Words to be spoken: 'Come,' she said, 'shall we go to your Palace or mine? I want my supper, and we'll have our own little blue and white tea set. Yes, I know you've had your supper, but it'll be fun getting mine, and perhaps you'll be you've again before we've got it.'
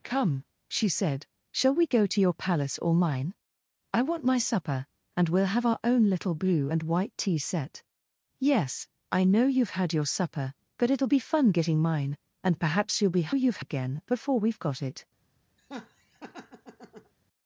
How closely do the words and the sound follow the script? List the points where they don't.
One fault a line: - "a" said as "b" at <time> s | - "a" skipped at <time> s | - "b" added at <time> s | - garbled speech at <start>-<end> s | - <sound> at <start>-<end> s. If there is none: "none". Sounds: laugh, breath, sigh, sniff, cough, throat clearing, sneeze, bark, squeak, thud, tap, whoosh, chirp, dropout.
- laugh at 15.6-17.1 s